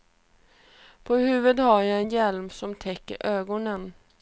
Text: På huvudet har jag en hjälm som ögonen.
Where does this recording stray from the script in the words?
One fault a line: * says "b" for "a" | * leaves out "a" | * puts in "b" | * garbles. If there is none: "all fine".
* puts in "täcker"